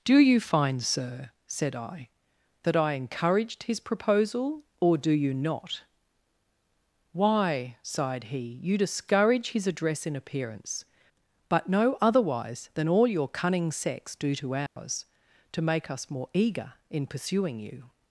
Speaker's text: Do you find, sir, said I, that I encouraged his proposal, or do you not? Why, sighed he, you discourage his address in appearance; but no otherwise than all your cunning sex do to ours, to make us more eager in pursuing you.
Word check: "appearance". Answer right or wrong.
right